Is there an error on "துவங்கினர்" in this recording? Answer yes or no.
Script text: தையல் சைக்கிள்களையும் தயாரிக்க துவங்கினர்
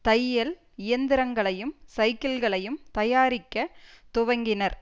no